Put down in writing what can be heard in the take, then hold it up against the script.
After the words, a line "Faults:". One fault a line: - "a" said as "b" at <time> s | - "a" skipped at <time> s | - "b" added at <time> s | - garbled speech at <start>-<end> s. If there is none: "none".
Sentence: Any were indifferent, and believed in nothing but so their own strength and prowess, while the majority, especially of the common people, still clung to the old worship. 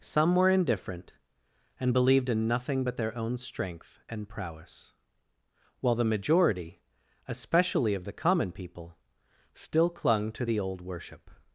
Some were indifferent, and believed in nothing but their own strength and prowess, while the majority, especially of the common people, still clung to the old worship.
Faults:
- "Any" said as "Some" at 0.0 s
- "so" skipped at 3.0 s